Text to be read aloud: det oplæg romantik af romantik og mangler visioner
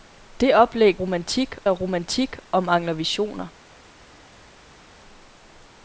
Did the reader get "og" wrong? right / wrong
right